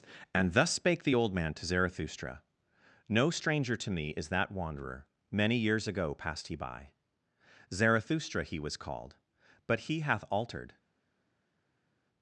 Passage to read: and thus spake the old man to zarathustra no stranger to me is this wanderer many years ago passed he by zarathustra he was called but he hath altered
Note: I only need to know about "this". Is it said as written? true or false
false